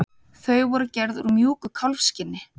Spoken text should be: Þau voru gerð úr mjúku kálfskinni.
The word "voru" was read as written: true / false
true